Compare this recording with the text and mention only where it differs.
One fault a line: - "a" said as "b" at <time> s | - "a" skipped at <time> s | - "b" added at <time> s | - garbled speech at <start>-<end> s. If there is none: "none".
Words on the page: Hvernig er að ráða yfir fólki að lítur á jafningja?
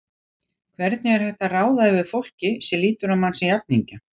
- "hægt" added at 1.2 s
- "að" said as "sem" at 2.7 s
- "mann sem" added at 3.3 s